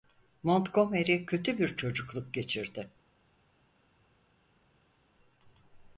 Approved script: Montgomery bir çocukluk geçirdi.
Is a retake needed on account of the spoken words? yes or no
yes